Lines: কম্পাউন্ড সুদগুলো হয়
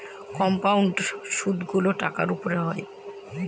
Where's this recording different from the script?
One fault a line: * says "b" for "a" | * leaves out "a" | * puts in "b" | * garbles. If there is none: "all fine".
* puts in "টাকার উপর"